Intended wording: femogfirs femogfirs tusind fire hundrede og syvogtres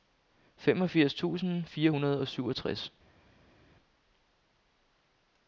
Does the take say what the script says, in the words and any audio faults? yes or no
no